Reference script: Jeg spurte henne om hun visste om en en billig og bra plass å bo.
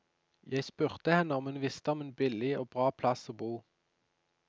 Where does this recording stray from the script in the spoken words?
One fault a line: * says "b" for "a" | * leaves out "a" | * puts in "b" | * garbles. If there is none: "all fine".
* leaves out "en"